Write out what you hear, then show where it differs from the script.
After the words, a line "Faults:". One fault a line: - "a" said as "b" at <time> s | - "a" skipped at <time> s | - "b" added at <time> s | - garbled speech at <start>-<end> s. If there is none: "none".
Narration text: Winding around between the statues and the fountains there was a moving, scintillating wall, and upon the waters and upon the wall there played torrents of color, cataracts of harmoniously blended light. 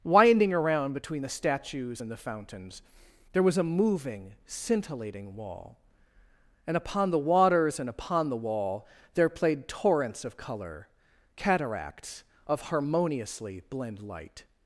Winding around between the statues and the fountains there was a moving, scintillating wall, and upon the waters and upon the wall there played torrents of color, cataracts of harmoniously blend light.
Faults:
- "blended" said as "blend" at 13.7 s